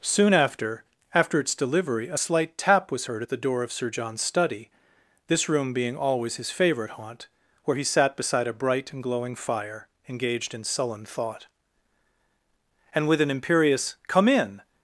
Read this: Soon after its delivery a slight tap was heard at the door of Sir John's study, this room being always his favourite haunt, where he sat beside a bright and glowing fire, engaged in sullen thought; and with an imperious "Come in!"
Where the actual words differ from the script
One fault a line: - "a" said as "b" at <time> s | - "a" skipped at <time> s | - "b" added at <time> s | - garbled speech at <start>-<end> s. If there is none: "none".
- "after" added at 1.1 s